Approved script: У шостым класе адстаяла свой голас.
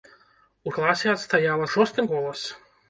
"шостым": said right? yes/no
no